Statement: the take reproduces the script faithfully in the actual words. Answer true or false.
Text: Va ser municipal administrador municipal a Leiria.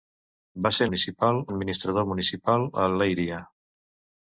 true